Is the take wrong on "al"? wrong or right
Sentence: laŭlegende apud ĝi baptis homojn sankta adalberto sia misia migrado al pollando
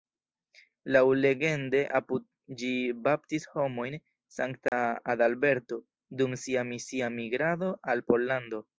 right